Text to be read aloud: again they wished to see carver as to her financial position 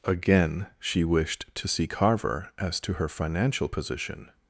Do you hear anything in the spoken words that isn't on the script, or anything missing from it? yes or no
yes